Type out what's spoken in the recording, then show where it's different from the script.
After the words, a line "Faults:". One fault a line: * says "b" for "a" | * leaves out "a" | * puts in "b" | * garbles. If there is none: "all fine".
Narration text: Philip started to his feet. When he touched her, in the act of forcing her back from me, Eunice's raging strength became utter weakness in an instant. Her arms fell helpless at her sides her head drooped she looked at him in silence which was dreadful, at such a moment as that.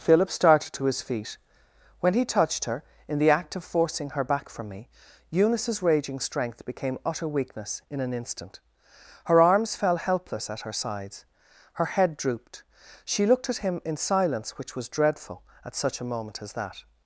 Philip started to his feet. When he touched her, in the act of forcing her back from me, Eunice's raging strength became utter weakness in an instant. Her arms fell helpless at her sides her head drooped she looked at him in silence which was dreadful, at such a moment as that.
Faults:
all fine